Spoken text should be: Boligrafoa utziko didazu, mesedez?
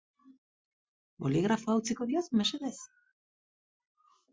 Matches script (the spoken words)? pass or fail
pass